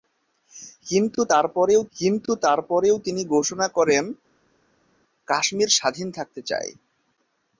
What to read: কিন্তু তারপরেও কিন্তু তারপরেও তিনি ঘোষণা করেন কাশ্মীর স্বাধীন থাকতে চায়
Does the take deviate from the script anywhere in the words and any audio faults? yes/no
no